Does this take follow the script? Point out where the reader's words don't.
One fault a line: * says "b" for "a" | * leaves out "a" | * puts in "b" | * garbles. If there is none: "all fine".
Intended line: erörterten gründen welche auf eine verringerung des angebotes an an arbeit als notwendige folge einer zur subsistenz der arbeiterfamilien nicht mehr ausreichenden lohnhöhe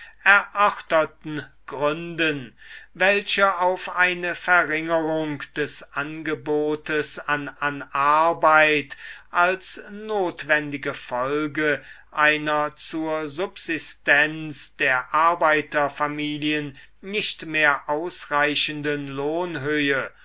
all fine